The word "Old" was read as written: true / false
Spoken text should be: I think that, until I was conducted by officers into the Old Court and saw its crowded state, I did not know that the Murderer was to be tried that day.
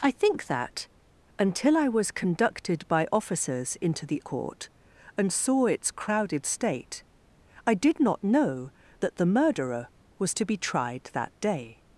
false